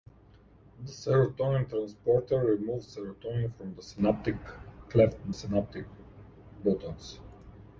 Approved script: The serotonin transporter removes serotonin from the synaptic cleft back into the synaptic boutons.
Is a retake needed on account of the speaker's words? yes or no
yes